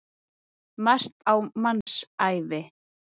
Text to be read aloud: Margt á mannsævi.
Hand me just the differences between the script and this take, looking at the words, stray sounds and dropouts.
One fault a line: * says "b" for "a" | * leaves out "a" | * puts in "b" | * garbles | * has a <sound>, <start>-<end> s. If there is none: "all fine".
* has a dropout, 1.8-1.9 s